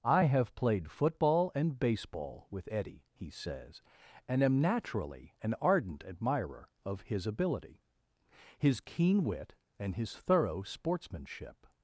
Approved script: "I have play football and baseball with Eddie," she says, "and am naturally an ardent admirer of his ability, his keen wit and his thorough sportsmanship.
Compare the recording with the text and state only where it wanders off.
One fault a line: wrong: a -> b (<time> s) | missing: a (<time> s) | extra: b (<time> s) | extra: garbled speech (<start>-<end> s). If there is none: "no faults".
wrong: play -> played (0.6 s)
wrong: she -> he (3.1 s)